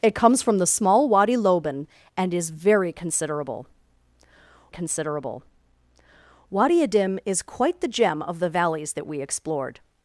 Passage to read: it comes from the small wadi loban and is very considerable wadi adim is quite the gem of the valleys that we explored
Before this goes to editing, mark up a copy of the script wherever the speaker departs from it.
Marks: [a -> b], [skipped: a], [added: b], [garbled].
it comes from the small wadi loban and is very considerable [added: considerable] wadi adim is quite the gem of the valleys that we explored